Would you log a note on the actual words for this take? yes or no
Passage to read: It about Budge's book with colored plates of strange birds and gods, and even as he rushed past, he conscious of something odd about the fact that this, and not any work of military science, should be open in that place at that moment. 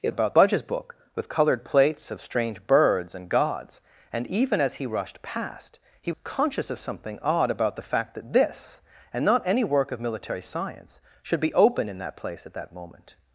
no